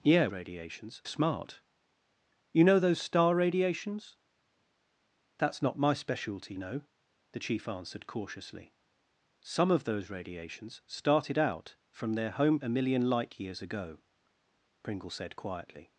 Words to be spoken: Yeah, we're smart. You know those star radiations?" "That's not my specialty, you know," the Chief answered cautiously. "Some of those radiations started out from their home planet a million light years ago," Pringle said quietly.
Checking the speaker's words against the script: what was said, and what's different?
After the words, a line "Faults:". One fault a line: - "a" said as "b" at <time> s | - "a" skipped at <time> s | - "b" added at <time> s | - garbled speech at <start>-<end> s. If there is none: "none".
Yeah, radiations smart. You know those star radiations?" "That's not my specialty, know," the Chief answered cautiously. "Some of those radiations started out from their home a million light years ago," Pringle said quietly.
Faults:
- "we're" said as "radiations" at 0.3 s
- "you" skipped at 6.5 s
- "planet" skipped at 12.6 s